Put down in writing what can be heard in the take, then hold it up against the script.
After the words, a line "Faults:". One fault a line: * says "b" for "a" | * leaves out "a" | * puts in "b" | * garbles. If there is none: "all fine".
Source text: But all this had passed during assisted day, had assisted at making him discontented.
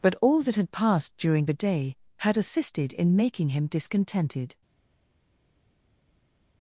But all that had passed during the day, had assisted in making him discontented.
Faults:
* says "that" for "this"
* says "the" for "assisted"
* says "in" for "at"